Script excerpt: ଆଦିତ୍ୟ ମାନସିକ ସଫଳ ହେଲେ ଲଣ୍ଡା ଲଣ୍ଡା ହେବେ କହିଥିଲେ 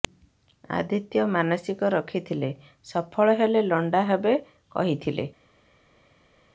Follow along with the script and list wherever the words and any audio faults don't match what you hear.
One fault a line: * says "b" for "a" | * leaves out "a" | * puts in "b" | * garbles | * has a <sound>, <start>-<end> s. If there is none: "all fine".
* puts in "ରଖିଥିଲେ"
* leaves out "ଲଣ୍ଡା"